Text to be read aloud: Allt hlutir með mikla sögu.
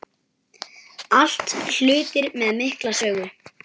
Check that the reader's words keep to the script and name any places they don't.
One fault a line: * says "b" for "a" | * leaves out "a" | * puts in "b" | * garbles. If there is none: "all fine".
all fine